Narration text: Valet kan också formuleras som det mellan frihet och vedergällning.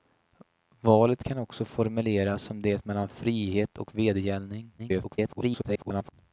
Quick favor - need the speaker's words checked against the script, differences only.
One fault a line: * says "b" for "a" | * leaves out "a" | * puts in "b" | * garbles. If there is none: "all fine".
* garbles